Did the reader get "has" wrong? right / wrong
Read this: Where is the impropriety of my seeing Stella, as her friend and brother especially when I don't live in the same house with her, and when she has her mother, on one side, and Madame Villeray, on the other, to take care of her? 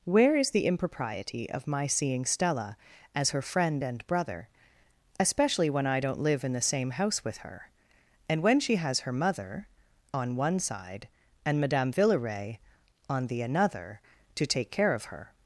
right